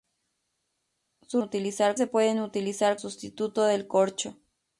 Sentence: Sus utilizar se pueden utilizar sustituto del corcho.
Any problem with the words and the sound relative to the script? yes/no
no